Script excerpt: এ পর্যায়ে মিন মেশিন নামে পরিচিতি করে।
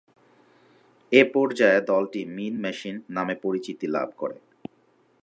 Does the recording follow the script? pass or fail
fail